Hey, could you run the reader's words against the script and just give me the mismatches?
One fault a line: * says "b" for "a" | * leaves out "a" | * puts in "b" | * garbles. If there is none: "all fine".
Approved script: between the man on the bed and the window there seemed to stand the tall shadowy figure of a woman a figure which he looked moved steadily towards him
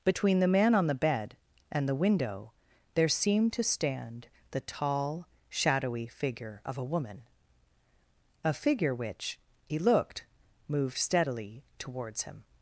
all fine